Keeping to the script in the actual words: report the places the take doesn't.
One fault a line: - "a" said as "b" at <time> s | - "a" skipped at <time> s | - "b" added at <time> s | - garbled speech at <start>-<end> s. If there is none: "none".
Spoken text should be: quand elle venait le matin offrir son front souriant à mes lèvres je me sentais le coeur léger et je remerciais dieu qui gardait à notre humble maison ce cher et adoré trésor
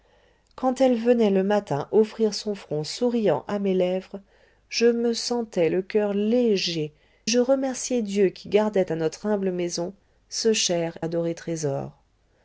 - "et" skipped at 6.9 s
- "et" skipped at 11.0 s